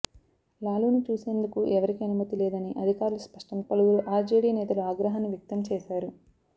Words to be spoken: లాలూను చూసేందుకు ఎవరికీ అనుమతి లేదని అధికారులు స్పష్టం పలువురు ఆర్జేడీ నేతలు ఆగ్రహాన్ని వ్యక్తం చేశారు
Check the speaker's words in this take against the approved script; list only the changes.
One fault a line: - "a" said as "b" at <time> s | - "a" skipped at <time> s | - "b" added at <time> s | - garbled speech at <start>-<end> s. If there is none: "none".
none